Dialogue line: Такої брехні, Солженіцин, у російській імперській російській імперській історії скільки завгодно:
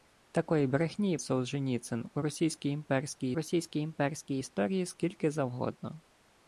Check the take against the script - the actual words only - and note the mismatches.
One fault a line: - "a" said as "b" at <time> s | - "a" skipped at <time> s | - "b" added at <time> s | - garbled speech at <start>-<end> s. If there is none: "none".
none